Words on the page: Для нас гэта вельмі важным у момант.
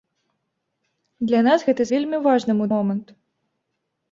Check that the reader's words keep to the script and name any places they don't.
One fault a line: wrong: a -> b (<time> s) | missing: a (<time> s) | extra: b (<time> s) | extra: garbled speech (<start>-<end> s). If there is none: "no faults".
no faults